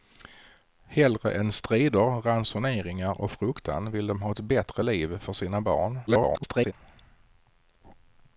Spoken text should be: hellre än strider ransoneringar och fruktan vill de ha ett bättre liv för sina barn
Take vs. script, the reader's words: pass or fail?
fail